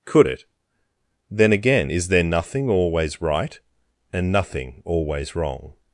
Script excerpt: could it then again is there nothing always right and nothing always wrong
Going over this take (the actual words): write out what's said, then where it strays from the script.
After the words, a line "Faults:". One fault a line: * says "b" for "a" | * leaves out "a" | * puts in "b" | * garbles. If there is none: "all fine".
could it then again is there nothing always right and nothing always wrong
Faults:
all fine